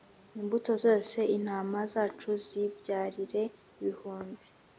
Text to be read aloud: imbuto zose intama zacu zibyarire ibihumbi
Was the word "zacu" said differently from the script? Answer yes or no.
no